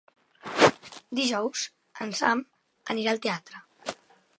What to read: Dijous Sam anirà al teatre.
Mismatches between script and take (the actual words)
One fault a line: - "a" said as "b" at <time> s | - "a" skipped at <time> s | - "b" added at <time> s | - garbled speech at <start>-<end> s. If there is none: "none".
- "en" added at 2.1 s